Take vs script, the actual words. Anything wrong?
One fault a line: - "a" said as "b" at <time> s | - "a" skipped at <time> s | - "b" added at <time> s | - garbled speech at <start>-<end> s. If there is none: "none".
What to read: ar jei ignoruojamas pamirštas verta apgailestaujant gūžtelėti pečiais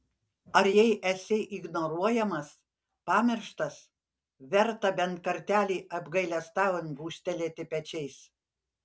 - "esi" added at 1.1 s
- "bent kartelį" added at 5.0 s